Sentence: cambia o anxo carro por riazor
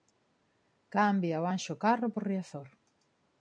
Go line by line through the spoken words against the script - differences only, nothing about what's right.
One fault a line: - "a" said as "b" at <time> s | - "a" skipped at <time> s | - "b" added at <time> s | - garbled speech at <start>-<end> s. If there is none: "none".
none